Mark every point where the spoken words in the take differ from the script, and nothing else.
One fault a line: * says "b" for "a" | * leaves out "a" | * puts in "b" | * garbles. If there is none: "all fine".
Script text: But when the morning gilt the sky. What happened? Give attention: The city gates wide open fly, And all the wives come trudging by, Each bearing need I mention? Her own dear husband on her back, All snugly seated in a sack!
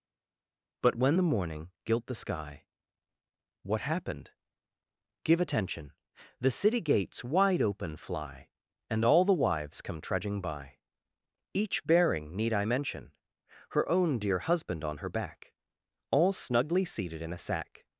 all fine